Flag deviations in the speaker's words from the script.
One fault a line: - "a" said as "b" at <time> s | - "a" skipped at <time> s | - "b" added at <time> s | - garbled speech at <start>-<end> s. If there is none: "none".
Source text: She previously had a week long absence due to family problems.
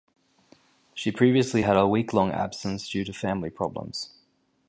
none